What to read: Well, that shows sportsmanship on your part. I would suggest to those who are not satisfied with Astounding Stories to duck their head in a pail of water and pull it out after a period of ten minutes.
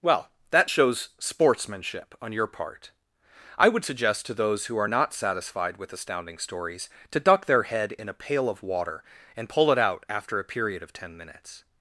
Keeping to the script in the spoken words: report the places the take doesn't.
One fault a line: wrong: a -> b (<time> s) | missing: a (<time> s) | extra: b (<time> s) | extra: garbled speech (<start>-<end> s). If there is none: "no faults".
no faults